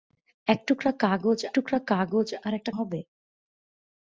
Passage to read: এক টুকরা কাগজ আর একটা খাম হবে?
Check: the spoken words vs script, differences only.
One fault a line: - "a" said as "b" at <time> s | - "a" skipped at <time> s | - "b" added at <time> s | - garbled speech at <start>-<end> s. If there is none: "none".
- "টুকরা কাগজ" added at 1.5 s
- "খাম" skipped at 2.7 s